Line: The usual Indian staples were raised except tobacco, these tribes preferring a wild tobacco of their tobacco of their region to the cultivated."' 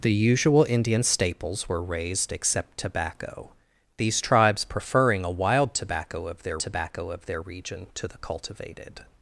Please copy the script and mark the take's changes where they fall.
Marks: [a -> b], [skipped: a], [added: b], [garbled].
The usual Indian staples were raised except tobacco, these tribes preferring a wild tobacco of their tobacco of their region to the cultivated."'